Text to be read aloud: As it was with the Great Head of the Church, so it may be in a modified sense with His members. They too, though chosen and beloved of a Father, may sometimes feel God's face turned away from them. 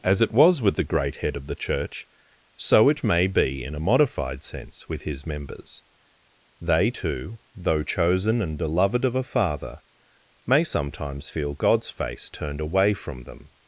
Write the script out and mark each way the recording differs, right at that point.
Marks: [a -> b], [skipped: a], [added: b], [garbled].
As it was with the Great Head of the Church, so it may be in a modified sense with His members. They too, though chosen and beloved of a Father, may sometimes feel God's face turned away from them.